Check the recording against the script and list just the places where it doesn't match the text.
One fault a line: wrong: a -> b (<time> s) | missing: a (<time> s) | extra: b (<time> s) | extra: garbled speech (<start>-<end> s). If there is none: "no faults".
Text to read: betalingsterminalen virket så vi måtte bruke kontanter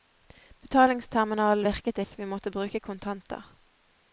no faults